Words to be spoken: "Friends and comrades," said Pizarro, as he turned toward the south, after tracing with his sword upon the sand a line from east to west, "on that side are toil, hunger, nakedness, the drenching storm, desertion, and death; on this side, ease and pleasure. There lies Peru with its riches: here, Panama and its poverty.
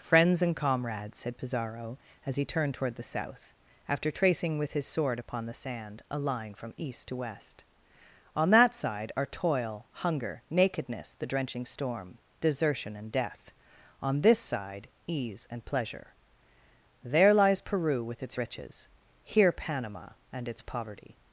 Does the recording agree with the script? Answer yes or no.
yes